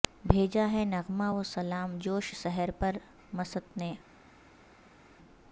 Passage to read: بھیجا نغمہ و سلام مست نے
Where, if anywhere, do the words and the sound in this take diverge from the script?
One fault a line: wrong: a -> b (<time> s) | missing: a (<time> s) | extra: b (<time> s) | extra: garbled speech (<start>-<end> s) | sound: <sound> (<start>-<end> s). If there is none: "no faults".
extra: ہے (0.7 s)
extra: جوش سحر پر (2.0 s)